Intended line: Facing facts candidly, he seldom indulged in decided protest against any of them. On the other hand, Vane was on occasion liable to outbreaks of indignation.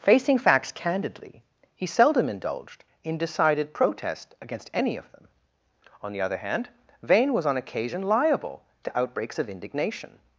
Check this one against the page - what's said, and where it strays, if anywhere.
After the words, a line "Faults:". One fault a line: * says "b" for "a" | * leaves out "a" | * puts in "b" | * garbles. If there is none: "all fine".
Facing facts candidly, he seldom indulged in decided protest against any of them. On the other hand, Vane was on occasion liable to outbreaks of indignation.
Faults:
all fine